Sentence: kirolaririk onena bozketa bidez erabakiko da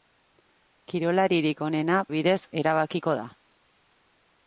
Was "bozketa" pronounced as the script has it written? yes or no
no